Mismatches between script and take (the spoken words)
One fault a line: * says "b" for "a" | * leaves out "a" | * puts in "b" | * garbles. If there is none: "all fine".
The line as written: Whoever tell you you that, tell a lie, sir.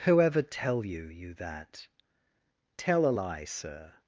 all fine